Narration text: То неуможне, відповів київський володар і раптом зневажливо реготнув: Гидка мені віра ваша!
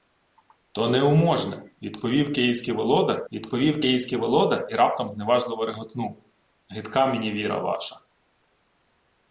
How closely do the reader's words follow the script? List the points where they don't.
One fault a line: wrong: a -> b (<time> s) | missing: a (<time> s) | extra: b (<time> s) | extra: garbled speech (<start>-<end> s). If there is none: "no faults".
extra: відповів київський володар (3.3 s)